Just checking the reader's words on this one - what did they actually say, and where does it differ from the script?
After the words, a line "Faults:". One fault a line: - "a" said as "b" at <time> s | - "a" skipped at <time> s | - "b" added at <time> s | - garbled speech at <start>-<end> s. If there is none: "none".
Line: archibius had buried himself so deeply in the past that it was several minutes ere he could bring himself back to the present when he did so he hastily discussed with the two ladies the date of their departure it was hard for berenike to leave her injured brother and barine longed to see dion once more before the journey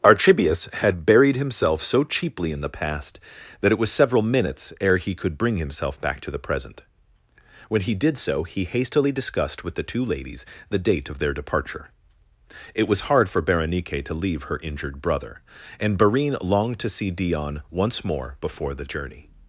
archibius had buried himself so cheaply in the past that it was several minutes ere he could bring himself back to the present when he did so he hastily discussed with the two ladies the date of their departure it was hard for berenike to leave her injured brother and barine longed to see dion once more before the journey
Faults:
- "deeply" said as "cheaply" at 2.0 s